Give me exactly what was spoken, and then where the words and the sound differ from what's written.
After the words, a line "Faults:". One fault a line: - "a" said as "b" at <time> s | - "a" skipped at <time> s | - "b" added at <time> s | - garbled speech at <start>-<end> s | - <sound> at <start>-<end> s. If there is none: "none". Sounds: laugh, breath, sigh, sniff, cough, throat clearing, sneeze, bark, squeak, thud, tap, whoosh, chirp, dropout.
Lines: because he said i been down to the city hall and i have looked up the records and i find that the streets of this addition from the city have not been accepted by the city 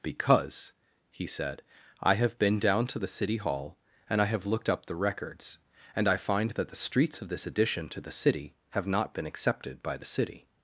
because he said i have been down to the city hall and i have looked up the records and i find that the streets of this addition to the city have not been accepted by the city
Faults:
- "have" added at 2.1 s
- "from" said as "to" at 7.9 s